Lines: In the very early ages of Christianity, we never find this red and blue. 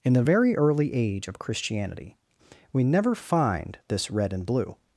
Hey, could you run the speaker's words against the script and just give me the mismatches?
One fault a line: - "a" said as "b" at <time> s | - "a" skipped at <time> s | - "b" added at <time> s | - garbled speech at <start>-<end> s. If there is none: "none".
- "ages" said as "age" at 0.9 s